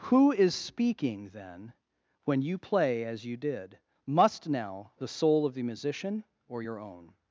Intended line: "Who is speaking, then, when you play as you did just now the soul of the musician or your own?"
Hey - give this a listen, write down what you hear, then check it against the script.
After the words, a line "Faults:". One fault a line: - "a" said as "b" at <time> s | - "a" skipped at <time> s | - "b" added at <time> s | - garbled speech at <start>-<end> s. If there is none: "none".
"Who is speaking, then, when you play as you did must now the soul of the musician or your own?"
Faults:
- "just" said as "must" at 4.0 s